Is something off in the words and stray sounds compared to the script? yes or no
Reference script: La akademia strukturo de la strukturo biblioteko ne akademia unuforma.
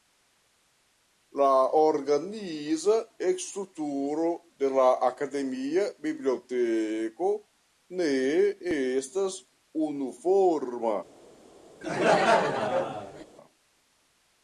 yes